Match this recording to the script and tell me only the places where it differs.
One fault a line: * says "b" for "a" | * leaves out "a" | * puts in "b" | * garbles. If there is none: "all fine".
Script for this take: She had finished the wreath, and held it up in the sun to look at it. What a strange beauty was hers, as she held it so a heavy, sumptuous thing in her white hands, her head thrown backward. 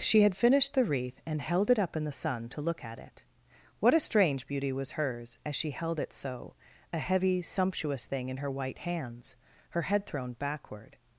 all fine